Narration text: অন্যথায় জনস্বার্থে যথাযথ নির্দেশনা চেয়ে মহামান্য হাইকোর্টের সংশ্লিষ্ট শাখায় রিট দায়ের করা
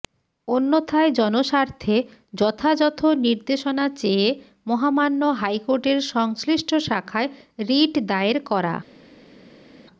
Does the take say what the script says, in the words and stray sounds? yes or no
yes